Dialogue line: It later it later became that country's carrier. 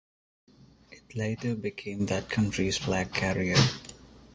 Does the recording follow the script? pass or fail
fail